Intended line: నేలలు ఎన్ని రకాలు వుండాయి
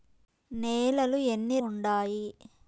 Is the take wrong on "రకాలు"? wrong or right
wrong